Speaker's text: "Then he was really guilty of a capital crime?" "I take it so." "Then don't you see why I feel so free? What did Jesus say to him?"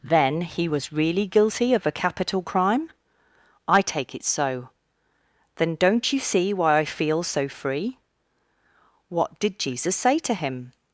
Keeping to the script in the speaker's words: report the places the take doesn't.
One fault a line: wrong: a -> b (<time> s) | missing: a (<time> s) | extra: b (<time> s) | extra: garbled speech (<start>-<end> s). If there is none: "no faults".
no faults